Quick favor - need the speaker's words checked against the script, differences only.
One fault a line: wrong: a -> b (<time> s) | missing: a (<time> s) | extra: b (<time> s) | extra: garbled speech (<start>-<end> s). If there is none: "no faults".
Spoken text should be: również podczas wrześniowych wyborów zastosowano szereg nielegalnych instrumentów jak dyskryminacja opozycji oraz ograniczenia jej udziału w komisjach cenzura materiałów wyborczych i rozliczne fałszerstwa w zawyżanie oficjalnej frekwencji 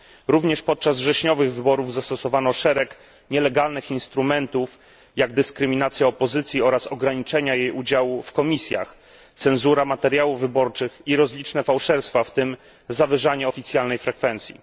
extra: tym (12.3 s)